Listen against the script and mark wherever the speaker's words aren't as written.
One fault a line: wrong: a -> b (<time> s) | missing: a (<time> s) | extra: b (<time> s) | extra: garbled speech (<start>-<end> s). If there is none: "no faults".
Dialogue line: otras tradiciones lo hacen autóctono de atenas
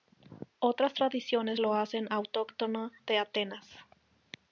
no faults